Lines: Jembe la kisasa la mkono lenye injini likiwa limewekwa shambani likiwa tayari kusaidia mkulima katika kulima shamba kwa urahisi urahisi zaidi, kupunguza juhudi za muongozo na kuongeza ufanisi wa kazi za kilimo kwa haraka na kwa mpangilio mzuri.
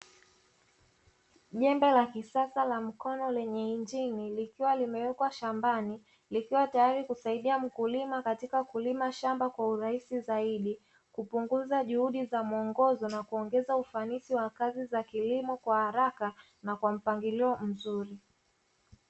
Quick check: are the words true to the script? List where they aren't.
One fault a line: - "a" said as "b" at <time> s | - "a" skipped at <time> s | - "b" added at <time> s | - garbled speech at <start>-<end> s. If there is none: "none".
- "urahisi" skipped at 10.2 s